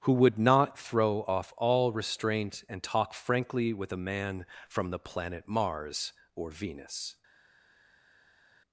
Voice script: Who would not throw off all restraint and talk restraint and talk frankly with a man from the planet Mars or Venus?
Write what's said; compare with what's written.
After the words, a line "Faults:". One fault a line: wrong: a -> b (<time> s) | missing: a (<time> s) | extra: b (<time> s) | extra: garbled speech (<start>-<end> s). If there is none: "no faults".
Who would not throw off all restraint and talk frankly with a man from the planet Mars or Venus?
Faults:
missing: restraint and talk (3.1 s)